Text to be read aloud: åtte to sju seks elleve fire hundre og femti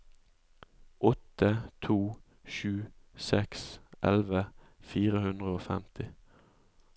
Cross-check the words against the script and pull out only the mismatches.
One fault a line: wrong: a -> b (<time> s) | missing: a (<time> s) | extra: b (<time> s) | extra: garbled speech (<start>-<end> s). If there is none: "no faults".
no faults